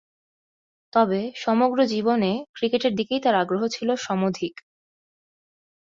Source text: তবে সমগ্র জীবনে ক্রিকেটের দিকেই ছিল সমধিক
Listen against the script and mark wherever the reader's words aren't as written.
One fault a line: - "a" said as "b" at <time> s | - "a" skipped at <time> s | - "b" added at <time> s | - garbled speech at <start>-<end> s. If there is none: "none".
- "তার আগ্রহ" added at 3.2 s